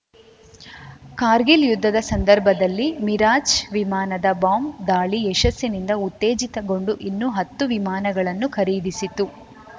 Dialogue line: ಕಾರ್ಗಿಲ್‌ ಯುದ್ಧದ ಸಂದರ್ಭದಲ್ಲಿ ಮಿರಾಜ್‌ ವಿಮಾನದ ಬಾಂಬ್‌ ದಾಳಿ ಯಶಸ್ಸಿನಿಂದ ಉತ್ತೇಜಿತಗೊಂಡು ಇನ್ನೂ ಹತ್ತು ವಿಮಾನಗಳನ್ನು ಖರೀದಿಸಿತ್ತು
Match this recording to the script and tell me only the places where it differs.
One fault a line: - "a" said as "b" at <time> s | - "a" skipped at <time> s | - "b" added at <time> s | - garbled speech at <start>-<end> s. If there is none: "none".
none